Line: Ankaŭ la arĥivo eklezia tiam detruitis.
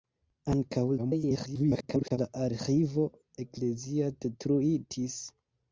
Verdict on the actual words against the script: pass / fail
fail